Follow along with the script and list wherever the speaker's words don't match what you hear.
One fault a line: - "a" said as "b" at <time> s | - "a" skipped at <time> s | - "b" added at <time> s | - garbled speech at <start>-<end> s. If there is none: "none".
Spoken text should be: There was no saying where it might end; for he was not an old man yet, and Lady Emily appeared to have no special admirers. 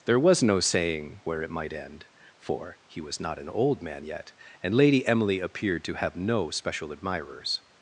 none